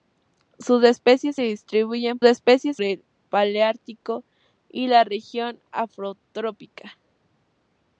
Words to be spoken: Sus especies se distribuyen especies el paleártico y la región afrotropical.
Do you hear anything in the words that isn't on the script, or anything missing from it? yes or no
no